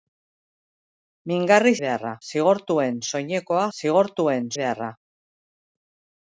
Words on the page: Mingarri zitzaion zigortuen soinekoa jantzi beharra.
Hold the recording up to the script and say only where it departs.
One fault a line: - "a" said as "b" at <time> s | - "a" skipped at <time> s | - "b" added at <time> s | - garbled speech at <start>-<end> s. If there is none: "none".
- "zitzaion" said as "beharra" at 1.8 s
- "jantzi" said as "zigortuen" at 3.8 s